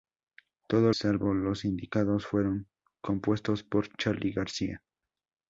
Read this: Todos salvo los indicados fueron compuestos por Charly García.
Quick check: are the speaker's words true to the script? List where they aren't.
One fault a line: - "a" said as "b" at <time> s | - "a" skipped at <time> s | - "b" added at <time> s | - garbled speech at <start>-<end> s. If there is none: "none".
none